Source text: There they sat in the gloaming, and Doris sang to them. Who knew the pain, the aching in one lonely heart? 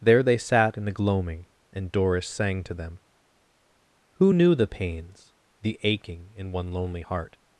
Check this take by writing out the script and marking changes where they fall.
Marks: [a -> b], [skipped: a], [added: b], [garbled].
There they sat in the gloaming, and Doris sang to them. Who knew the [pain, -> pains] the aching in one lonely heart?